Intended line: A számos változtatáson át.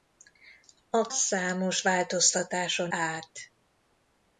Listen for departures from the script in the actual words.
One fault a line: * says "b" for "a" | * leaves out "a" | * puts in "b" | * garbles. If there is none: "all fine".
all fine